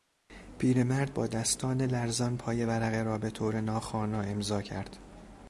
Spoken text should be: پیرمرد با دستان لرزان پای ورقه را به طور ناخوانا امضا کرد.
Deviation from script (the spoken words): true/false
false